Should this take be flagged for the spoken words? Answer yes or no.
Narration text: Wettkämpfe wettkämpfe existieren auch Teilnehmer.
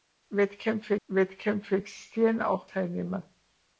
no